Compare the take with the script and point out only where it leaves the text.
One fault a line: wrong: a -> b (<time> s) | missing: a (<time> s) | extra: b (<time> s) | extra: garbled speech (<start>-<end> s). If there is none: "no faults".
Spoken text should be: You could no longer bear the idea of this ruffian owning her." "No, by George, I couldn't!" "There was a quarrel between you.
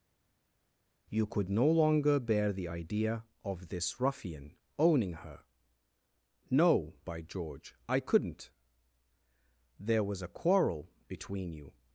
no faults